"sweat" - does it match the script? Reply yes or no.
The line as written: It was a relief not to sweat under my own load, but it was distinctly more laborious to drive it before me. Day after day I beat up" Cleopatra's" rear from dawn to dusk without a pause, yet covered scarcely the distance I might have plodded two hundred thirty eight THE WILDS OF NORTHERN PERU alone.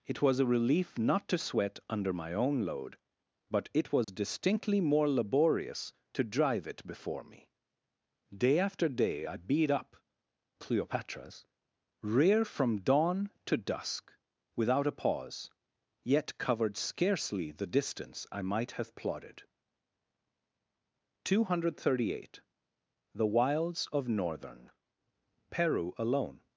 yes